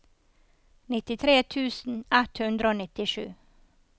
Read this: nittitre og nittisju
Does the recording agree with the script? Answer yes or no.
no